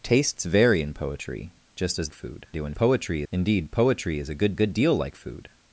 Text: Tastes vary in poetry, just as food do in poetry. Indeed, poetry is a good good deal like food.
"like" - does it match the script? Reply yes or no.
yes